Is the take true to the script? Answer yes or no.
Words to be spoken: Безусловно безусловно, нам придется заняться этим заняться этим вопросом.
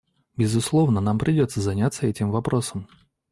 no